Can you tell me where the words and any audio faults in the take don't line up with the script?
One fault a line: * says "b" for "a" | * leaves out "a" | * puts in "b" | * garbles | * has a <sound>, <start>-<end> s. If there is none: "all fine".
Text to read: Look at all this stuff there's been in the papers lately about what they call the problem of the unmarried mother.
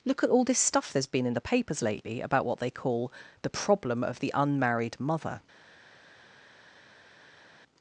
all fine